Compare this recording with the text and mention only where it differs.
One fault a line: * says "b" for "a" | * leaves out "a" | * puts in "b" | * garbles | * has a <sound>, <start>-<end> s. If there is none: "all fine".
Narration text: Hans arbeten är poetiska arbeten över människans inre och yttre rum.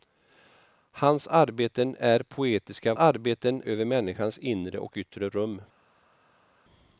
all fine